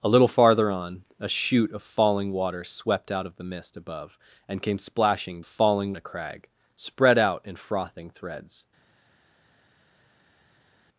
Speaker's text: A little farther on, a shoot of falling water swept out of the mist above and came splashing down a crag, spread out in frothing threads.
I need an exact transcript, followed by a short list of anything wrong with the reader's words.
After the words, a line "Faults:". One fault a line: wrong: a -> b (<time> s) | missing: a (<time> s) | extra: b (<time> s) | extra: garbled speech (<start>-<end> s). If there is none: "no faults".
A little farther on, a shoot of falling water swept out of the mist above and came splashing falling a crag, spread out in frothing threads.
Faults:
wrong: down -> falling (5.4 s)